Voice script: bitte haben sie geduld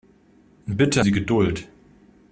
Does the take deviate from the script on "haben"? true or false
true